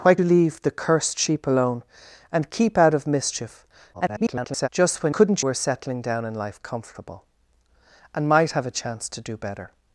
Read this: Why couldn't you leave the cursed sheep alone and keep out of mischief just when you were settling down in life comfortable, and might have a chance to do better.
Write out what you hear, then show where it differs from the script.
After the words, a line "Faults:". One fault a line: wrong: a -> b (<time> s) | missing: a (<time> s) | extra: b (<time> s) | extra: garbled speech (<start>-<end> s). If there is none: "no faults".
Why you leave the cursed sheep alone and keep out of mischief [garbled] just when couldn't were settling down in life comfortable, and might have a chance to do better.
Faults:
missing: couldn't (0.1 s)
extra: garbled speech (3.9-4.7 s)
wrong: you -> couldn't (5.1 s)